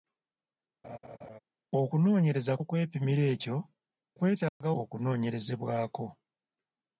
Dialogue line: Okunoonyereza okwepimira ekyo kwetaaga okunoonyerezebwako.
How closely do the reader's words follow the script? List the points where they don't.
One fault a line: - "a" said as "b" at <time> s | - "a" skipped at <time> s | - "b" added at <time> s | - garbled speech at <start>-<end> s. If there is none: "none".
none